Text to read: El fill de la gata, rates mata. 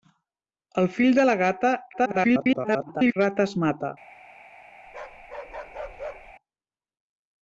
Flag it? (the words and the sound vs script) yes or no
yes